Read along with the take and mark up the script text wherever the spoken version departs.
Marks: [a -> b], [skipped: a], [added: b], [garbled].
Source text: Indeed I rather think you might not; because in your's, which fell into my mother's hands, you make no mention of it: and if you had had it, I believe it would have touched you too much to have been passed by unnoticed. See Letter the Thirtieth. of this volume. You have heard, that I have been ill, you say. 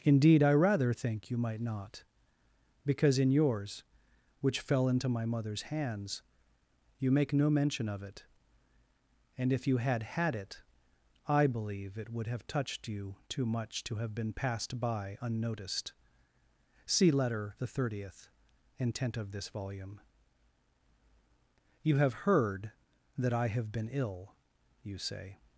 Indeed I rather think you might not; because in your's, which fell into my mother's hands, you make no mention of it: and if you had had it, I believe it would have touched you too much to have been passed by unnoticed. See Letter the Thirtieth. [added: intent] of this volume. You have heard, that I have been ill, you say.